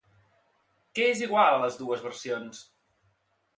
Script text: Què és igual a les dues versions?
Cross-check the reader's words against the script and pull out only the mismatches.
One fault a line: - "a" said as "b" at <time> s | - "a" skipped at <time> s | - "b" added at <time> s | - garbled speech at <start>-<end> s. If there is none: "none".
none